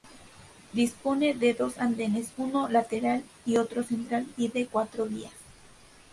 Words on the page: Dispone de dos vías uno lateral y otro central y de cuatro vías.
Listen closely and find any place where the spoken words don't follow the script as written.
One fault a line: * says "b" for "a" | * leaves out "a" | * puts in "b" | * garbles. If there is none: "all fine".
* says "andenes" for "vías"